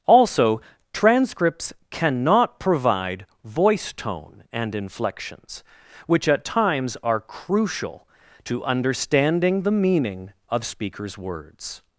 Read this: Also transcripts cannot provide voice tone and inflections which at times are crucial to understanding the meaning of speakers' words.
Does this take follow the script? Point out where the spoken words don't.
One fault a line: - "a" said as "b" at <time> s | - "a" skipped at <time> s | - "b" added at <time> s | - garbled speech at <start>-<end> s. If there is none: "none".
none